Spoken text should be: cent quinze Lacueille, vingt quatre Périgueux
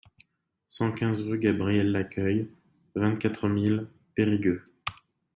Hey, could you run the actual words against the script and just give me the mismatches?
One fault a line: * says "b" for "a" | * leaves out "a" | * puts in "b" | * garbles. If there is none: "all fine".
* puts in "rue Gabriel"
* puts in "mille"